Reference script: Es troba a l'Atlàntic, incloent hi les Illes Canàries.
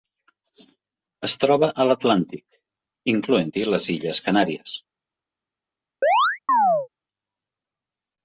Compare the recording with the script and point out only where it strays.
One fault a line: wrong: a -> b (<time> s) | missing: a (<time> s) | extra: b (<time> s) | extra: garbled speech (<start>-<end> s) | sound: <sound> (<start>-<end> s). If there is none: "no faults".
sound: chirp (6.0-6.9 s)